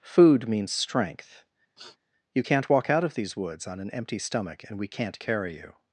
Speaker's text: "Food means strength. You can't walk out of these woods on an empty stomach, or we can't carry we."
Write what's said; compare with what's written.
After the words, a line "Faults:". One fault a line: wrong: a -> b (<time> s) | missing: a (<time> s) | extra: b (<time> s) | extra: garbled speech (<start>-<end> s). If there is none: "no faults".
"Food means strength. You can't walk out of these woods on an empty stomach, and we can't carry you."
Faults:
wrong: or -> and (4.6 s)
wrong: we -> you (5.6 s)